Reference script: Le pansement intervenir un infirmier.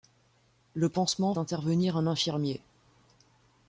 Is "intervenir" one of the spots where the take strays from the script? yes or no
no